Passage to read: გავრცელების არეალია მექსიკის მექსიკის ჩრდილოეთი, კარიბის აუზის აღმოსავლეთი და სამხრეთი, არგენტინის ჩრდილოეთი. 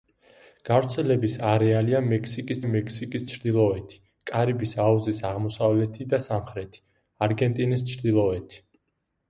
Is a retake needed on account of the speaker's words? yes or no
no